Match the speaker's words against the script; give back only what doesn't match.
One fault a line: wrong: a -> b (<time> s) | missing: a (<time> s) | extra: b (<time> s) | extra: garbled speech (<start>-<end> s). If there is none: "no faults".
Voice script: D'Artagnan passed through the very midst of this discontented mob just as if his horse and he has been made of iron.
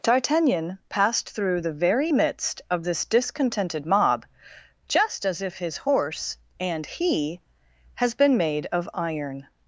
no faults